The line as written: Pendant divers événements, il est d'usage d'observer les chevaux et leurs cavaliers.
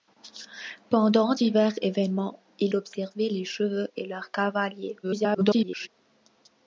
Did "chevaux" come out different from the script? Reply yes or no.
no